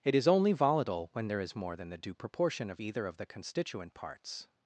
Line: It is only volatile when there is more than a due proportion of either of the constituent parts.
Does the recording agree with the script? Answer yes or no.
no